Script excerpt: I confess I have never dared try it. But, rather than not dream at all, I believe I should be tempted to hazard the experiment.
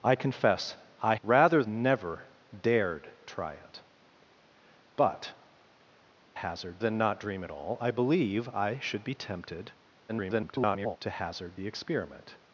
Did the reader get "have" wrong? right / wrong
wrong